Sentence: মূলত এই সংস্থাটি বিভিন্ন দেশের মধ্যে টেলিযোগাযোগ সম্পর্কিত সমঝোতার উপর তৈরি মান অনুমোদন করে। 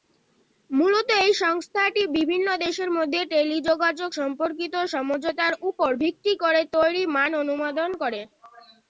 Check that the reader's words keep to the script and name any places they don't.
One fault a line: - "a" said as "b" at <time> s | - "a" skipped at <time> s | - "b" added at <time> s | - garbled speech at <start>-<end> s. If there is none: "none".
- "ভিত্তি করে" added at 6.0 s